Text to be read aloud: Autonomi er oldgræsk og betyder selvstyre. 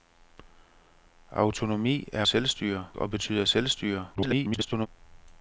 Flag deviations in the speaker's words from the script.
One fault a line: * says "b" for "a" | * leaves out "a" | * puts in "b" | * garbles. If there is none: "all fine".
* says "selvstyre" for "oldgræsk"
* garbles